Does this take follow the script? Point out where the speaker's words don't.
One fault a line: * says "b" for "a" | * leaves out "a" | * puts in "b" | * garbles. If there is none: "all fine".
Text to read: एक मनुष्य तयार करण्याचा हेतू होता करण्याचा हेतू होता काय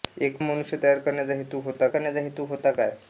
all fine